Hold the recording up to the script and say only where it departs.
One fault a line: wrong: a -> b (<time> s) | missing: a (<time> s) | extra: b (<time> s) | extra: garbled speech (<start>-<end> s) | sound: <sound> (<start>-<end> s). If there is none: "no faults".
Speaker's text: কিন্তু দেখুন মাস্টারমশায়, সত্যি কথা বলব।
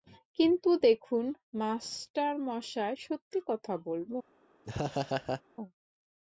sound: laugh (4.6-5.4 s)